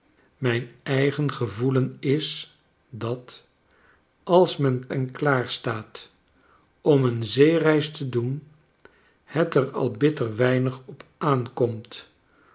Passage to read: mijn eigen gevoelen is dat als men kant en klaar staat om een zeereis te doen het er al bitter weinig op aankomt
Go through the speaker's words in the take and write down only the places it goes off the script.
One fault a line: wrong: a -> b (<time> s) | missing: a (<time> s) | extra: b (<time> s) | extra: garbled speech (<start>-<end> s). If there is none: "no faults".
missing: kant (4.9 s)